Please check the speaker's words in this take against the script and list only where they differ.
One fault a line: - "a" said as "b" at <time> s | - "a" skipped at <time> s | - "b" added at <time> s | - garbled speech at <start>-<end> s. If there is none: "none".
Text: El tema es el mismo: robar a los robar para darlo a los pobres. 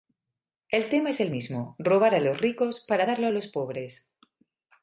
- "robar" said as "ricos" at 2.4 s